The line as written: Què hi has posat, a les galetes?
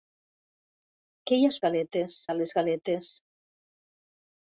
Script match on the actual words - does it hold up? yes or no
no